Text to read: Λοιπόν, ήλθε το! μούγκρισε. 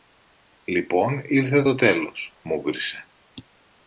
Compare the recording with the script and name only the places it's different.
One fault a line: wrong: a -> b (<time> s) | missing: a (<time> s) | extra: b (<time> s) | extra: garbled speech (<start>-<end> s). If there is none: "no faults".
extra: τέλος (1.7 s)